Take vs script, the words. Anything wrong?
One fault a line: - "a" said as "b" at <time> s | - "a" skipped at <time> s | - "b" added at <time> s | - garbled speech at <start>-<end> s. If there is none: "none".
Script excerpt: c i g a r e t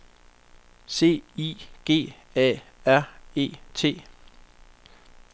none